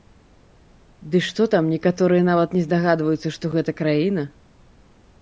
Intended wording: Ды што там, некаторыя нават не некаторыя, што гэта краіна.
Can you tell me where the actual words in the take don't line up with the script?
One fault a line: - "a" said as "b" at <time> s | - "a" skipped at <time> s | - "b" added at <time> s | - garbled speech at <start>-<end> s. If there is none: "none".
- "некаторыя" said as "здагадваюцца" at 2.7 s